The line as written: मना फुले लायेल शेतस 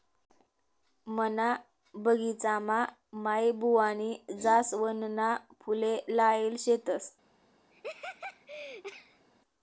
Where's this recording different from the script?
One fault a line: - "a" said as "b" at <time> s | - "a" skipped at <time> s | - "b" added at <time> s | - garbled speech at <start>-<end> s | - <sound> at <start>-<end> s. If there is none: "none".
- "बगिचामा माईबुवानी जासवनना" added at 1.9 s
- laugh at 7.7-9.3 s